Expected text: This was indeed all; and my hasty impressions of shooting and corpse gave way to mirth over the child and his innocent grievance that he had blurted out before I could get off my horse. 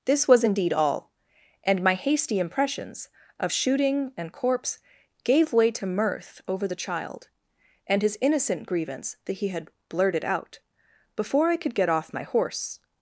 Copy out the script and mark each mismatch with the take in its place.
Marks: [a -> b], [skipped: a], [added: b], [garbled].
This was indeed all; and my hasty impressions of shooting and corpse gave way to mirth over the child and his innocent grievance that he had blurted out before I could get off my horse.